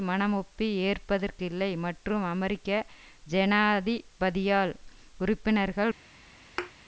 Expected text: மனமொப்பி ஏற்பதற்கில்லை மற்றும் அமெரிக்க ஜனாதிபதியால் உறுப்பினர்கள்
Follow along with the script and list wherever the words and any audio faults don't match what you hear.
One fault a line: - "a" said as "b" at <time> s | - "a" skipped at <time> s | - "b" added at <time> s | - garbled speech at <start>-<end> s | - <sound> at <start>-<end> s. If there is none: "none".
- thud at 6.6-6.7 s